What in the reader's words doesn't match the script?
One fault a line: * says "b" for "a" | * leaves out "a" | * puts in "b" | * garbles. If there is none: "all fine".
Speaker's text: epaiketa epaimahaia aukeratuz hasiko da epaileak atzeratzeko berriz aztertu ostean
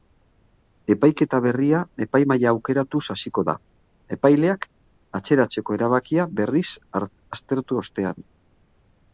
* puts in "berria"
* puts in "erabakia"